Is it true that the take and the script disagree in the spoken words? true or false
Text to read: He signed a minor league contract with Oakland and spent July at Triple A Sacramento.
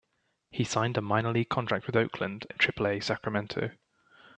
true